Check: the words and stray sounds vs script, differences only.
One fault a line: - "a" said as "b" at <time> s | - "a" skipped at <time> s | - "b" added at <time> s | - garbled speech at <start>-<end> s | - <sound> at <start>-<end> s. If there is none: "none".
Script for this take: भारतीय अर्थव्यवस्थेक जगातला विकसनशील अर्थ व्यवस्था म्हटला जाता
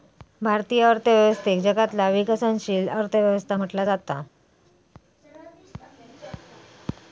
none